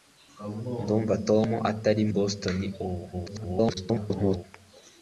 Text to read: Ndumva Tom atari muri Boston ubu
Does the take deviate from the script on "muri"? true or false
true